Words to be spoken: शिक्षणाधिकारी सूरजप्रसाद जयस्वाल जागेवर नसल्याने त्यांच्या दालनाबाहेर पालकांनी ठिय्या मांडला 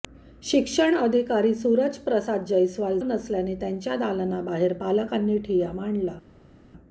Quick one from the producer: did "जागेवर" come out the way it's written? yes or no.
no